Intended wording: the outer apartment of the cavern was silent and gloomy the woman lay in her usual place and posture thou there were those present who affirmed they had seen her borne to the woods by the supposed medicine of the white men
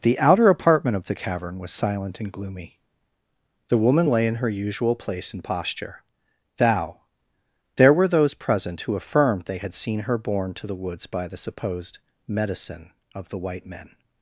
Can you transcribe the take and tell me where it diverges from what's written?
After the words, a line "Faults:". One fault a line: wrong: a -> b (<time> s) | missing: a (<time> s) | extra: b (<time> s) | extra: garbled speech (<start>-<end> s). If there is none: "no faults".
the outer apartment of the cavern was silent and gloomy the woman lay in her usual place and posture thou there were those present who affirmed they had seen her borne to the woods by the supposed medicine of the white men
Faults:
no faults